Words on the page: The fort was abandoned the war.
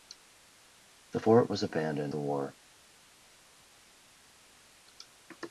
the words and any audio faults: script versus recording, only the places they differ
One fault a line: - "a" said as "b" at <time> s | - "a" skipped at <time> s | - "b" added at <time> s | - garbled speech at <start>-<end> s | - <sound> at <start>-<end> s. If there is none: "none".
none